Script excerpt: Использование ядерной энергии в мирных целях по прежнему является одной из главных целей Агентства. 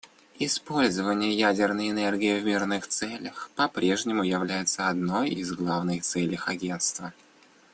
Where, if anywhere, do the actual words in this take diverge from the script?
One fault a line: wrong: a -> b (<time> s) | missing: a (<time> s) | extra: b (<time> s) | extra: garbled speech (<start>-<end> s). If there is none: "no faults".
no faults